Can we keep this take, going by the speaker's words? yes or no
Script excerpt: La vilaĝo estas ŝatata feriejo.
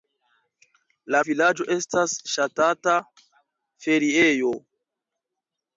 yes